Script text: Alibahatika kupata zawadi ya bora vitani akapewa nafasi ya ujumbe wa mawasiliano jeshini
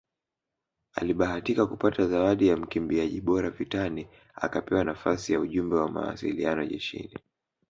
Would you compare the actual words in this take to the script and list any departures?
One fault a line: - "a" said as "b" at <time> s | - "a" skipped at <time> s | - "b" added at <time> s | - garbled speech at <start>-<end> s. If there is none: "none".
- "mkimbiaji" added at 2.6 s